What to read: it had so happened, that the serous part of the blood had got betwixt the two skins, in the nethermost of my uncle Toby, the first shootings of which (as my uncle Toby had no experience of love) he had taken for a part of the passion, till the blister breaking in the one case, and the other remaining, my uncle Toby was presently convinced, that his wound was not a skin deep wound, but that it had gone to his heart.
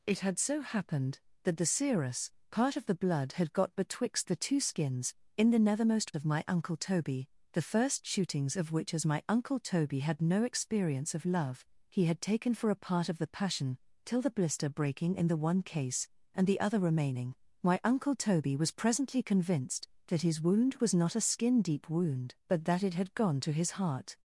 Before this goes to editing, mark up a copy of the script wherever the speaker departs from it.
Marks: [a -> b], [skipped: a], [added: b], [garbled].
it had so happened, that the serous part of the blood had got betwixt the two skins, in the nethermost of my uncle Toby, the first shootings of which (as my uncle Toby had no experience of love) he had taken for a part of the passion, till the blister breaking in the one case, and the other remaining, my uncle Toby was presently convinced, that his wound was not a skin deep wound, but that it had gone to his heart.